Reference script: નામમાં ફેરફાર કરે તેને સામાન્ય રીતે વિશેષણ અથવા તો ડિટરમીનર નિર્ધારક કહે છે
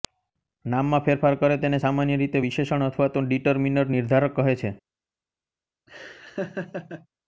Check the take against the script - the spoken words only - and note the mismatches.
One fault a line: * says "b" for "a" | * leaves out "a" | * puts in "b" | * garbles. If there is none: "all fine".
all fine